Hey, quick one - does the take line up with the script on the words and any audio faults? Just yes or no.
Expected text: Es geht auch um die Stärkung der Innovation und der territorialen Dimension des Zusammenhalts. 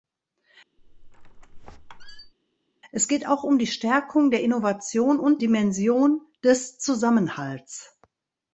no